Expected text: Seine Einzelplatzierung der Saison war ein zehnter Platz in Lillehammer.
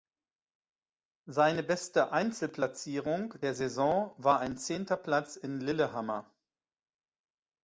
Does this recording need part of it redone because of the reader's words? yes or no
yes